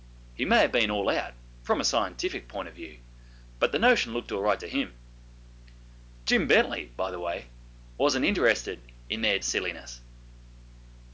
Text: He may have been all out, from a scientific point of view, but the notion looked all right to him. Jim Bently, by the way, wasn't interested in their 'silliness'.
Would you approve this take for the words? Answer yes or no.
yes